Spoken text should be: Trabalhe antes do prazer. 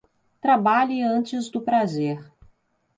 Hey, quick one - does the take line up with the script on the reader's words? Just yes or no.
yes